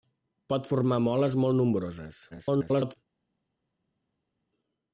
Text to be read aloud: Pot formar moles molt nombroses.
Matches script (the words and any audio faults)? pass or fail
fail